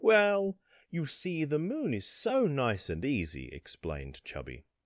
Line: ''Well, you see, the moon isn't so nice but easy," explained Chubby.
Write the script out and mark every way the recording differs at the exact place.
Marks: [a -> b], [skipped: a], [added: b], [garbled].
''Well, you see, the moon [isn't -> is] so nice [but -> and] easy," explained Chubby.